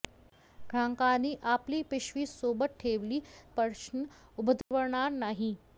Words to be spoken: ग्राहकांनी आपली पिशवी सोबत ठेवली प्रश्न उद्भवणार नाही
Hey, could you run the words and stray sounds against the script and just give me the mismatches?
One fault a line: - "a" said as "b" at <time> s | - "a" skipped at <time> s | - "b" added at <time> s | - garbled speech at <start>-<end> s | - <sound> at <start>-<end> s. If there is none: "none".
- dropout at 4.6-4.7 s